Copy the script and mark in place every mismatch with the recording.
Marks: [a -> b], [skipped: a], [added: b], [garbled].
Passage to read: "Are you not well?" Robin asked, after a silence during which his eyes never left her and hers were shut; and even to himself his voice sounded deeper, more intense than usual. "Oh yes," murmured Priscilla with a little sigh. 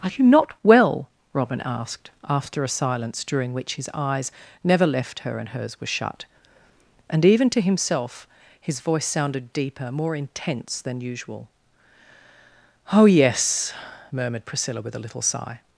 "Are you not well?" Robin asked, after a silence during which his eyes never left her and hers were shut; and even to himself his voice sounded deeper, more intense than usual. "Oh yes," murmured Priscilla with a little sigh.